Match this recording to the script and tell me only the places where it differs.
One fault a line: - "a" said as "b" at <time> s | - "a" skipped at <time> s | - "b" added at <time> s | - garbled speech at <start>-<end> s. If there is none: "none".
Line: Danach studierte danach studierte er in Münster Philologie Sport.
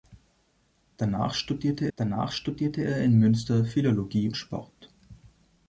none